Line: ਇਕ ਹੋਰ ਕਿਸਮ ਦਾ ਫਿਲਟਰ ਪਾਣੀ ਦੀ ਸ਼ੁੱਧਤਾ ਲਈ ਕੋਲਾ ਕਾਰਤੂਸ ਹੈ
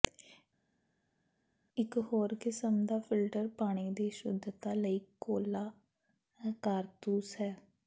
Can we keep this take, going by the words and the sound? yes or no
yes